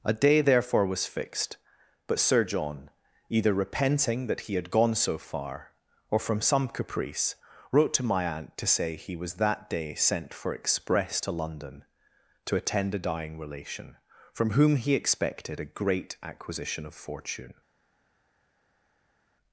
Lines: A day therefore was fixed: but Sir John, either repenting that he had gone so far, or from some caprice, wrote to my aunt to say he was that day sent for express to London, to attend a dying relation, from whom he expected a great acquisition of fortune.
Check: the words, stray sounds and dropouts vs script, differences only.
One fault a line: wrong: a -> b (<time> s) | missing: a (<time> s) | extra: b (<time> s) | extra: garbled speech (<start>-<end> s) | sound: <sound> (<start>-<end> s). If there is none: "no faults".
no faults